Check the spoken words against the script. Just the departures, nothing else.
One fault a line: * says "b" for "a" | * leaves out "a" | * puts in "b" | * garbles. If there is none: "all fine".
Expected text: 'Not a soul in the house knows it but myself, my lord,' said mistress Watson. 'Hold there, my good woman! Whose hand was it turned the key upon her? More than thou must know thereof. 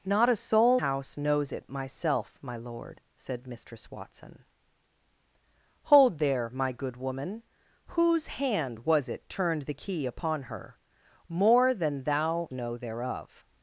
* leaves out "in the"
* leaves out "but"
* leaves out "must"